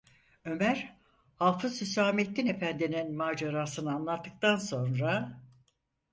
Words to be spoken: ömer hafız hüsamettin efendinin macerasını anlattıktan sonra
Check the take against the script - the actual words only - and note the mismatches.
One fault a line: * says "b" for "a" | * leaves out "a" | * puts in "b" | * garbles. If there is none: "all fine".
all fine